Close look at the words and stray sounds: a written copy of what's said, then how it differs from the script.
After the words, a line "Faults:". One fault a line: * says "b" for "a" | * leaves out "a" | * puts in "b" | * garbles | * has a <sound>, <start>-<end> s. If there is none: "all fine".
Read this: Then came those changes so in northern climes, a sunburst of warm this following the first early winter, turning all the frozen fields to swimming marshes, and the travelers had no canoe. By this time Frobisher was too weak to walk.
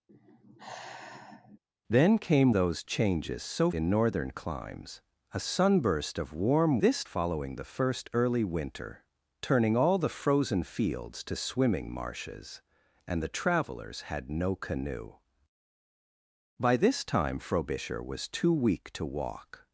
Then came those changes so in northern climes, a sunburst of warm this following the first early winter, turning all the frozen fields to swimming marshes, and the travelers had no canoe. By this time Frobisher was too weak to walk.
Faults:
* has a sigh, 0.1-1.6 s